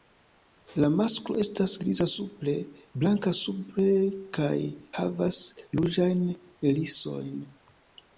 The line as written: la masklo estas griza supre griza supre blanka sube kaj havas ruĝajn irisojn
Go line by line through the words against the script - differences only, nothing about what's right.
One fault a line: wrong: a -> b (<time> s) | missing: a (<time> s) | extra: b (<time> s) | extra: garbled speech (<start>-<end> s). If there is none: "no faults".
missing: griza supre (2.5 s)